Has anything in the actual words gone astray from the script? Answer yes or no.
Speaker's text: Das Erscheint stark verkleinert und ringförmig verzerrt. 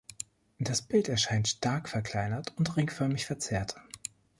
yes